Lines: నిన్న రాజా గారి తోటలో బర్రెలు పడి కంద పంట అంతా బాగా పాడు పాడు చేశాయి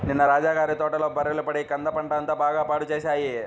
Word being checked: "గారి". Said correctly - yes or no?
yes